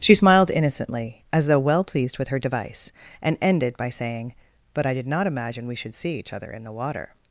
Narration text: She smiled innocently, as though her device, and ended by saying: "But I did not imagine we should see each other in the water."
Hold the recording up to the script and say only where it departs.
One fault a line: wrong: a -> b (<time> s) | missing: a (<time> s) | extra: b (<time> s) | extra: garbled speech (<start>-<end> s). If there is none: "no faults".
extra: well pleased with (1.6 s)